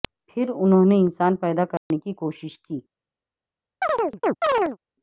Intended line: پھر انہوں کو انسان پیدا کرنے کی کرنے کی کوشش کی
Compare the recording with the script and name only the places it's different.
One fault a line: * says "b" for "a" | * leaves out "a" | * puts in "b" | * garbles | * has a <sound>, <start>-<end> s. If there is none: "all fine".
* says "نے" for "کو"
* has a dropout, 1.8-1.9 s
* leaves out "کرنے کی"
* has a chirp, 3.8-4.8 s